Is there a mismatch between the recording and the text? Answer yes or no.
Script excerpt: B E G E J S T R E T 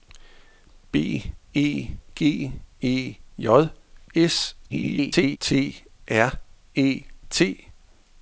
yes